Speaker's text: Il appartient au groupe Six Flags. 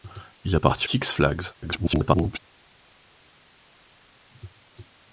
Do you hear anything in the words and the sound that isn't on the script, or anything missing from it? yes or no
yes